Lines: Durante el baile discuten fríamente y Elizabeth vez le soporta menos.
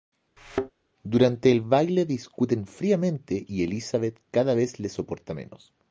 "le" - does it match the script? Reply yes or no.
yes